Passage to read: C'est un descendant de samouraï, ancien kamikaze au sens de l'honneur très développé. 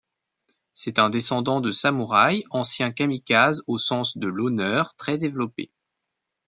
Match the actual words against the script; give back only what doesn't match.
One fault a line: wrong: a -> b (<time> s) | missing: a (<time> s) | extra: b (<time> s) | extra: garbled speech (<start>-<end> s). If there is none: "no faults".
no faults